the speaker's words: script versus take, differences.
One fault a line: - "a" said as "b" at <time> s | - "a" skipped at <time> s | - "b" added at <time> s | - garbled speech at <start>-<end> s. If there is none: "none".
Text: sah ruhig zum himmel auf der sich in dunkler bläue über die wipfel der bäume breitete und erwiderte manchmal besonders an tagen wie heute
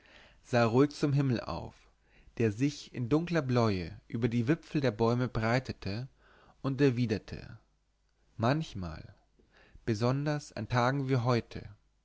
none